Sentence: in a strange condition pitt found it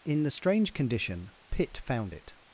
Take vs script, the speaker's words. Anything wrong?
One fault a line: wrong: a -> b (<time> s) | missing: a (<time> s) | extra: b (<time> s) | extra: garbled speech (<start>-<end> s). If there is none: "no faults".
wrong: a -> the (0.2 s)